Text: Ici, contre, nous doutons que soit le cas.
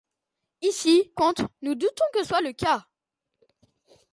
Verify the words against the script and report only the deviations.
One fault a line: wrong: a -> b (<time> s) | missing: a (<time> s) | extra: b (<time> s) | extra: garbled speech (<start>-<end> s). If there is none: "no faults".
no faults